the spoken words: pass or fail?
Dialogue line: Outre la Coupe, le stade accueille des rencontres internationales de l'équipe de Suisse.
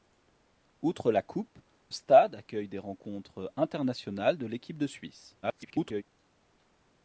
fail